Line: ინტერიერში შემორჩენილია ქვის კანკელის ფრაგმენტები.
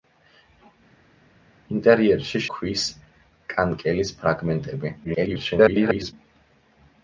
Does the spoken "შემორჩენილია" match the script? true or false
false